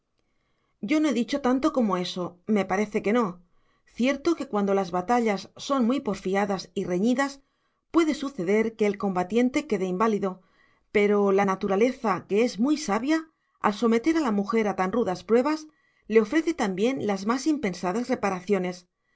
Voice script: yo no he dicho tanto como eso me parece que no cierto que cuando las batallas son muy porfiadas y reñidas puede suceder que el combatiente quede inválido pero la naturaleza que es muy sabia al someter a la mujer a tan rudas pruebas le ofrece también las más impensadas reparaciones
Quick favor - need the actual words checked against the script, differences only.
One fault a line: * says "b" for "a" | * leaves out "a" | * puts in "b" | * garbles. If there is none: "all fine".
all fine